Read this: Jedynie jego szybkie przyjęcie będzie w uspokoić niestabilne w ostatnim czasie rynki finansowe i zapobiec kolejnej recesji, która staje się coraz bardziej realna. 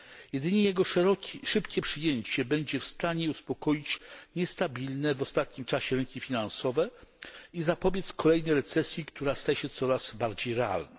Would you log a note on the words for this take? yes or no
yes